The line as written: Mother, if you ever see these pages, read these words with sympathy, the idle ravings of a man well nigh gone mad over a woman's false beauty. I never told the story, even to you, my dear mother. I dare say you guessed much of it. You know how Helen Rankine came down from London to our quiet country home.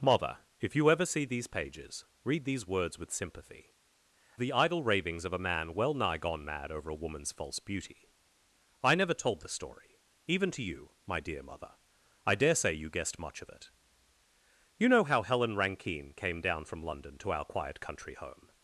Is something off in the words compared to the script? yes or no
no